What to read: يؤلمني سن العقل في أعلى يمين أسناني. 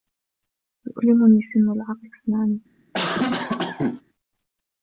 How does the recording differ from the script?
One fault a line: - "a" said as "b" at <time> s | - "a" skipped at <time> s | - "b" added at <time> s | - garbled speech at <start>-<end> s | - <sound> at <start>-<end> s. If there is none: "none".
- "في أعلى يمين" skipped at 2.1 s
- cough at 2.9-4.0 s